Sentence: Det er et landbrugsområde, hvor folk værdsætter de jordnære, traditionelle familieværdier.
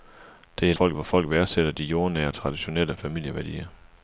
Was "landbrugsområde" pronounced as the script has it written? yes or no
no